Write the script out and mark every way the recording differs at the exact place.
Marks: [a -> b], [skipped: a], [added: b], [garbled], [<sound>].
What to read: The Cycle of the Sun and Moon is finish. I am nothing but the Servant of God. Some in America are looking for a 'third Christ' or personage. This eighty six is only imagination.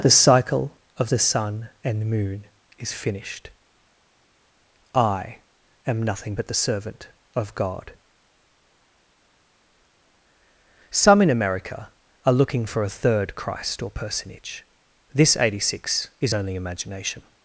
The Cycle of the Sun and Moon is [finish. -> finished] I am nothing but the Servant of God. Some in America are looking for a 'third Christ' or personage. This eighty six is only imagination.